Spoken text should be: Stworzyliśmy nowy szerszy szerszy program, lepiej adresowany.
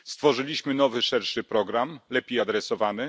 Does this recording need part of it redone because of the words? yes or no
yes